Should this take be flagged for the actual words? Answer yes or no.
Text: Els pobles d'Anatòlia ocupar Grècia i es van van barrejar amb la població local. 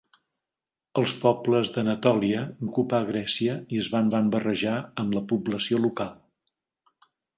no